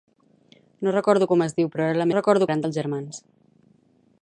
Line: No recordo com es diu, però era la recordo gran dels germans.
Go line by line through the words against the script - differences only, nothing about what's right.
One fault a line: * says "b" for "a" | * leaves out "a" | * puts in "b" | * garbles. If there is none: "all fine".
all fine